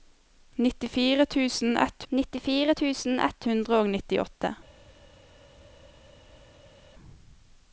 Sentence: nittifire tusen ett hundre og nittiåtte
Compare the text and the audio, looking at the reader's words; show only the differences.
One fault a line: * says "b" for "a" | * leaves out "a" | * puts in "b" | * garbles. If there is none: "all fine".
* puts in "nittifire tusen ett"